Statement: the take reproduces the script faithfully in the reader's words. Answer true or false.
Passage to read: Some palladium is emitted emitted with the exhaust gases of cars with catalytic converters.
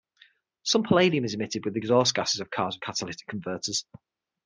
false